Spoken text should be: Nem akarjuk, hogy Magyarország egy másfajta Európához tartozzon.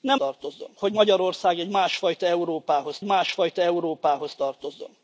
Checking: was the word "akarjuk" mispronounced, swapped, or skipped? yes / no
yes